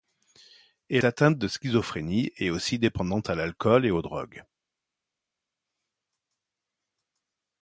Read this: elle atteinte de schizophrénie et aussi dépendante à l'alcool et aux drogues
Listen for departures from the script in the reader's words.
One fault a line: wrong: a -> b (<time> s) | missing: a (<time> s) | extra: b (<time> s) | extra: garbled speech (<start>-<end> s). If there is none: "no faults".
no faults